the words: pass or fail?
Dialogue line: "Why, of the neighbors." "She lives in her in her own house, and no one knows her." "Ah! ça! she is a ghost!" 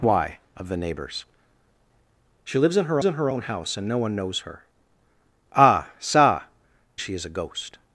pass